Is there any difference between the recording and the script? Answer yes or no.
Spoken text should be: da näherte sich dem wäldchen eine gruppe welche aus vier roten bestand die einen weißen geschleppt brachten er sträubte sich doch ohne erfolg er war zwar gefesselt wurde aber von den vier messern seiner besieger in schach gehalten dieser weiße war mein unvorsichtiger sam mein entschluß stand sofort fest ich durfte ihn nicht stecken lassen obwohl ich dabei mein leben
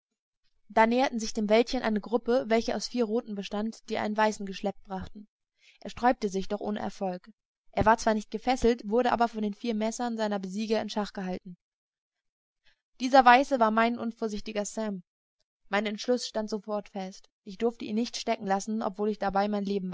yes